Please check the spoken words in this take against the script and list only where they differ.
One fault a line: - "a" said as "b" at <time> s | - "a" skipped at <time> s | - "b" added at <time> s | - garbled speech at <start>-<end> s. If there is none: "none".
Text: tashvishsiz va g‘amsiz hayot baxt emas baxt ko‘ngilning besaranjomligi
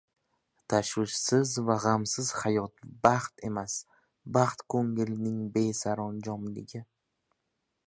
none